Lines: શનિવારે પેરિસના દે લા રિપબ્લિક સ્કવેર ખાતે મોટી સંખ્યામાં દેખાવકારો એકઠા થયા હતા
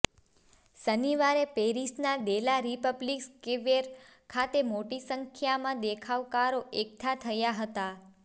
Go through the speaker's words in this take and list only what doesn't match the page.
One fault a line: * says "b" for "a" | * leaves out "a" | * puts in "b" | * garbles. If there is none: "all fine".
all fine